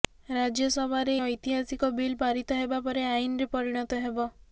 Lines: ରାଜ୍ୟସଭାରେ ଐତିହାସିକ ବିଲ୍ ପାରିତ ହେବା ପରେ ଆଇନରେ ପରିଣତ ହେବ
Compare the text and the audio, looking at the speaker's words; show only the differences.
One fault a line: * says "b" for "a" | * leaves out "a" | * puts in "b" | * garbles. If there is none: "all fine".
all fine